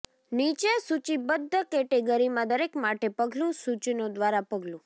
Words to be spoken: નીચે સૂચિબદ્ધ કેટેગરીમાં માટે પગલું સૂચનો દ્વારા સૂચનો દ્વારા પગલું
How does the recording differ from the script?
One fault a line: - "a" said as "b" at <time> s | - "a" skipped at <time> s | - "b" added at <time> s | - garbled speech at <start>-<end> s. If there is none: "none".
- "દરેક" added at 2.5 s
- "સૂચનો દ્વારા" skipped at 4.5 s